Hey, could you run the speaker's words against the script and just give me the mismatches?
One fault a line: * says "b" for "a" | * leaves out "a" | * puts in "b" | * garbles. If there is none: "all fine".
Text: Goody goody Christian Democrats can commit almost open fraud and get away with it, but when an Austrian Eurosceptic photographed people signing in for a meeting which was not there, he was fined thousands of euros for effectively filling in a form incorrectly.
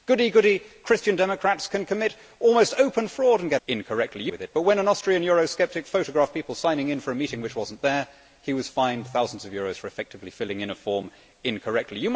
* says "incorrectly" for "away"